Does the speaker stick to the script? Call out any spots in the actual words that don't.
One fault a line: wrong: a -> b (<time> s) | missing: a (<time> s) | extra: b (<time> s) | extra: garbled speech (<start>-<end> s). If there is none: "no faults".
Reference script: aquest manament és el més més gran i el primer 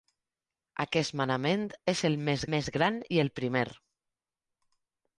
no faults